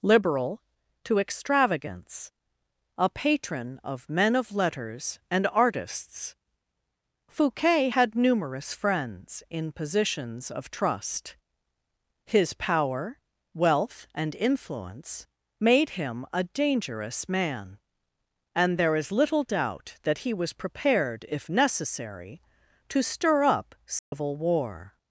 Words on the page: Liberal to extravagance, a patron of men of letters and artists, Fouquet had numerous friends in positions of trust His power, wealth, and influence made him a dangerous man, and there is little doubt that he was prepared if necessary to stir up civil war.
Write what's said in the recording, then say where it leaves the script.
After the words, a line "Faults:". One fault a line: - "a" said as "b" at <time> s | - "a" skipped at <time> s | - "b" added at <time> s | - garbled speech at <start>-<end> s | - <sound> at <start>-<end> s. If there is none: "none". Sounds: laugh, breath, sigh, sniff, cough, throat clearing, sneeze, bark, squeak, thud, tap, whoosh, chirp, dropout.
Liberal to extravagance, a patron of men of letters and artists, Fouquet had numerous friends in positions of trust His power, wealth, and influence made him a dangerous man, and there is little doubt that he was prepared if necessary to stir up civil war.
Faults:
- dropout at 24.0-24.1 s